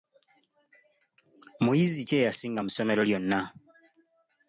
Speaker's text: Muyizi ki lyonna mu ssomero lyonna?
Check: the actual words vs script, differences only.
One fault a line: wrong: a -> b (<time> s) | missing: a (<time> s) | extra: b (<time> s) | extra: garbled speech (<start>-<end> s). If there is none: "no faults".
wrong: lyonna -> eyasinga (2.2 s)